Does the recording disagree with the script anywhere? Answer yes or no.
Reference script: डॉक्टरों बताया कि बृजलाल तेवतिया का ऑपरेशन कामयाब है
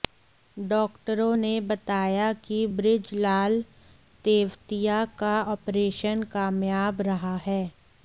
yes